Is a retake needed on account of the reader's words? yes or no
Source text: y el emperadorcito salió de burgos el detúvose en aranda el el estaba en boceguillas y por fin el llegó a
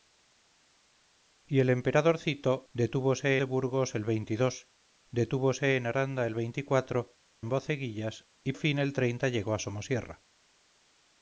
yes